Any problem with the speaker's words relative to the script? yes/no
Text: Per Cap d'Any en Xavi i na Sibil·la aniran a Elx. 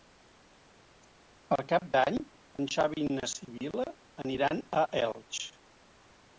no